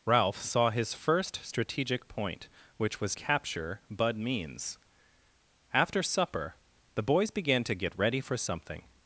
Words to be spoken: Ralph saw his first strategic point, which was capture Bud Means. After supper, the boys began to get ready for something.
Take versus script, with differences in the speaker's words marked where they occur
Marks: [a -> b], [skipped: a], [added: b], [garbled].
Ralph saw his first strategic point, which was capture Bud Means. After supper, the boys began to get ready for something.